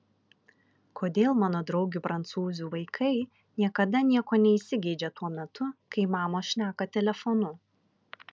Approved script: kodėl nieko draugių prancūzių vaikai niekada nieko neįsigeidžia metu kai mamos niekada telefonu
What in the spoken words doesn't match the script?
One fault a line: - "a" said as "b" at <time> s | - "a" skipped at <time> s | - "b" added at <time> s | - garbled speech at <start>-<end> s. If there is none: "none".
- "nieko" said as "mano" at 1.4 s
- "tuo" added at 5.2 s
- "niekada" said as "šneka" at 6.5 s